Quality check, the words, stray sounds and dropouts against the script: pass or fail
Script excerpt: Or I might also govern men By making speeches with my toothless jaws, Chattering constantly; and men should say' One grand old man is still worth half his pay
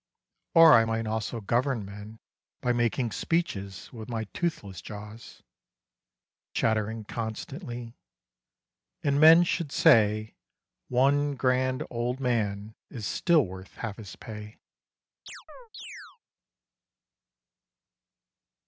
fail